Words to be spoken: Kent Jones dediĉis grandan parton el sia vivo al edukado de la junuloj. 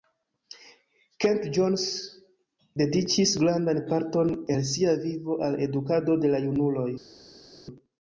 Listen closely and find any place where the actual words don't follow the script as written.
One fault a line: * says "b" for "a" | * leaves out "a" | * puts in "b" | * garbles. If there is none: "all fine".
all fine